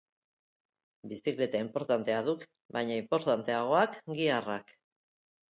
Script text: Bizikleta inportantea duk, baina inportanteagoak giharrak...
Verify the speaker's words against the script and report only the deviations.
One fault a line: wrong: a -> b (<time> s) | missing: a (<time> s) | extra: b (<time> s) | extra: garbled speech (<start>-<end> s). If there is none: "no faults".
no faults